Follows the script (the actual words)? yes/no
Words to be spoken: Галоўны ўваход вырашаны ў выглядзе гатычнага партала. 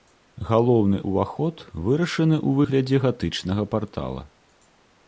yes